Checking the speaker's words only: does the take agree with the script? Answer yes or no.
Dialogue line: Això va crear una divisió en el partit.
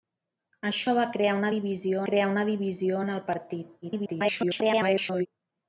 no